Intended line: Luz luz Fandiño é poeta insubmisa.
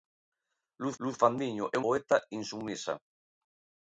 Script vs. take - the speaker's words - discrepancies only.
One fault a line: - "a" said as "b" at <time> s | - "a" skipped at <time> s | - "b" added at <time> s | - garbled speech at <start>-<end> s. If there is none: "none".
none